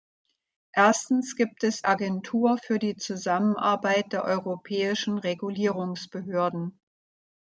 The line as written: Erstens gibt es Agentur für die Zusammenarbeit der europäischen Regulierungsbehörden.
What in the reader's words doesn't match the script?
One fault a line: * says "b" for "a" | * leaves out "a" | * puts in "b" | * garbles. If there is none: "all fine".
all fine